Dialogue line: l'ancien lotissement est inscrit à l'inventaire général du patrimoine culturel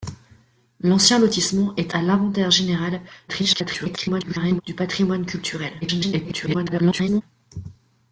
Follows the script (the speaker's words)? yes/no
no